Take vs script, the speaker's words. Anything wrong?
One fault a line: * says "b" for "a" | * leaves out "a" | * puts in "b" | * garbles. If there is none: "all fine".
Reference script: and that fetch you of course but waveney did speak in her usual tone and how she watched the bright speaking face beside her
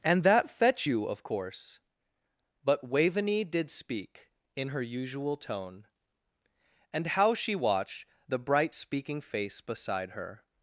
all fine